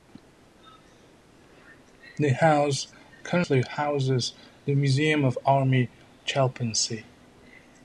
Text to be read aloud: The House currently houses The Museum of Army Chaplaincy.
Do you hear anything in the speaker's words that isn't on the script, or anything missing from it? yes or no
no